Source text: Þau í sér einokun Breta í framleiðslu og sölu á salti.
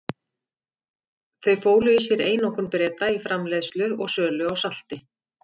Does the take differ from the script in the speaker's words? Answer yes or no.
yes